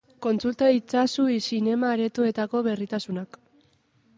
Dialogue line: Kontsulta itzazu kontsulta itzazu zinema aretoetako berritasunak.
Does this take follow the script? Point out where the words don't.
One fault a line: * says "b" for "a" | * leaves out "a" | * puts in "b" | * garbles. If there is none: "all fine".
* leaves out "kontsulta itzazu"